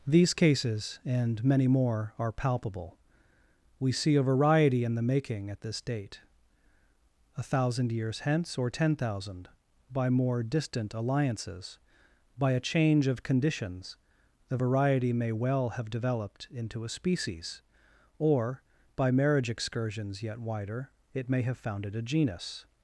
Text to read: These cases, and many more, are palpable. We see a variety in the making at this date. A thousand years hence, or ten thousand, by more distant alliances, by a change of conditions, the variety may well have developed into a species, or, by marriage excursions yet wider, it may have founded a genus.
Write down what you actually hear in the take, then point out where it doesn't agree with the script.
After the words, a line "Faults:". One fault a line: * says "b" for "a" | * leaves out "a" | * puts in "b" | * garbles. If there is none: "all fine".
These cases, and many more, are palpable. We see a variety in the making at this date. A thousand years hence, or ten thousand, by more distant alliances, by a change of conditions, the variety may well have developed into a species, or, by marriage excursions yet wider, it may have founded a genus.
Faults:
all fine